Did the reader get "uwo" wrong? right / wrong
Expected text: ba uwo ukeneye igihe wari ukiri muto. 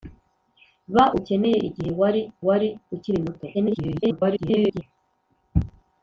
wrong